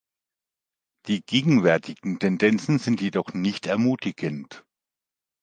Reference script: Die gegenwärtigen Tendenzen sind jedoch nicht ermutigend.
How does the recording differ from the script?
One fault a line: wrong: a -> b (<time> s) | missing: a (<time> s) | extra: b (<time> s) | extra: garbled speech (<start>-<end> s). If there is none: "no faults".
no faults